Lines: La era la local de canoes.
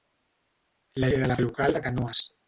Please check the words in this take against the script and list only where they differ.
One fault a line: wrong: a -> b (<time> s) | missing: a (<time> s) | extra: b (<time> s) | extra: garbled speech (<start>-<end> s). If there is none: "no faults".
no faults